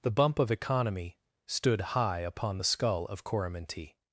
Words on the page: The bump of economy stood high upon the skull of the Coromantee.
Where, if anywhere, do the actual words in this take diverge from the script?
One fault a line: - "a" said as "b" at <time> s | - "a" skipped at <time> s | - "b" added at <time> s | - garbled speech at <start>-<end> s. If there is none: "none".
- "the" skipped at 3.2 s